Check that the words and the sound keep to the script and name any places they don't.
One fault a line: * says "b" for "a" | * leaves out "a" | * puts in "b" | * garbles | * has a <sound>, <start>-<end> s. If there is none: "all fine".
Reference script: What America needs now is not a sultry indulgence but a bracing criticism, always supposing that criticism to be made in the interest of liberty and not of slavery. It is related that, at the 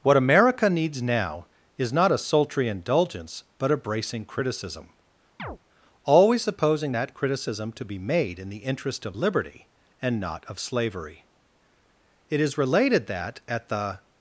* has a chirp, 5.4-5.6 s